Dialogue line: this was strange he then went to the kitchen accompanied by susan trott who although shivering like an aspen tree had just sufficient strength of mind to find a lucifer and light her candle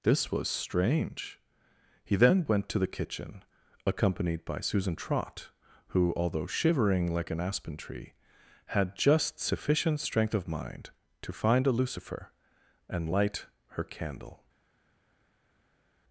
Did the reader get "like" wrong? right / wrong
right